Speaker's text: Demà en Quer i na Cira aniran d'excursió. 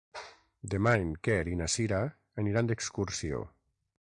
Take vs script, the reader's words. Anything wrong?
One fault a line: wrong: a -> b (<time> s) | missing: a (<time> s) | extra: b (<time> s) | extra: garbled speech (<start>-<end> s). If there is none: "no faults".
no faults